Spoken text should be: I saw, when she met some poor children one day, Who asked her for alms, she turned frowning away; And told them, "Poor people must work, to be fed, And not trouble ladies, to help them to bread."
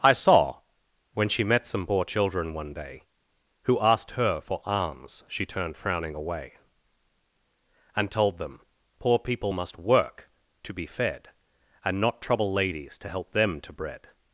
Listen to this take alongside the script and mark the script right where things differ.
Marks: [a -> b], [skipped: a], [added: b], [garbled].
I saw, when she met some poor children one day, Who asked her for alms, she turned frowning away; And told them, "Poor people must work, to be fed, And not trouble ladies, to help them to bread."